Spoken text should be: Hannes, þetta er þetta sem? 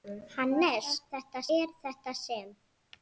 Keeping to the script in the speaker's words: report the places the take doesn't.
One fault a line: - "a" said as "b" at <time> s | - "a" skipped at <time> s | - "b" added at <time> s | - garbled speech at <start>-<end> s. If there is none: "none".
none